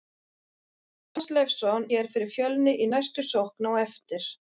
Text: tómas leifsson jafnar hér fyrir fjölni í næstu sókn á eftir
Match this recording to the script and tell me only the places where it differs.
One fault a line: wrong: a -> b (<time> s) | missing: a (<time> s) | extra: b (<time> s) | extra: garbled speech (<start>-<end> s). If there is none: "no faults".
missing: jafnar (1.9 s)